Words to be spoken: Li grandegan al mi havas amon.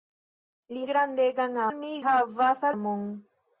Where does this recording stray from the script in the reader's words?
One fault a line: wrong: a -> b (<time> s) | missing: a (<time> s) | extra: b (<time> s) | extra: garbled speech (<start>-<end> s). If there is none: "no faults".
no faults